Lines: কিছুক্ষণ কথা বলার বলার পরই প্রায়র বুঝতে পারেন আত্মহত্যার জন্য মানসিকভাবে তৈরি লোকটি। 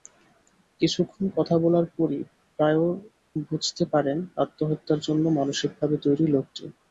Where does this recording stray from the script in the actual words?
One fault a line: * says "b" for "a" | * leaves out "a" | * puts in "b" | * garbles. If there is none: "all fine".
* leaves out "বলার"